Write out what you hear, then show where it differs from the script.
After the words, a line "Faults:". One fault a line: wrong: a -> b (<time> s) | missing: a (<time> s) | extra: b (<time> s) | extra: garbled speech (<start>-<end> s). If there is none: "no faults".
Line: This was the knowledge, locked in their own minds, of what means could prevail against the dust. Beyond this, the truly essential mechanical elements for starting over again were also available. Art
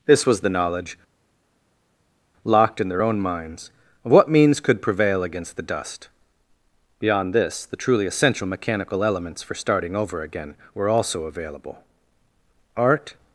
This was the knowledge, locked in their own minds, of what means could prevail against the dust. Beyond this, the truly essential mechanical elements for starting over again were also available. Art
Faults:
no faults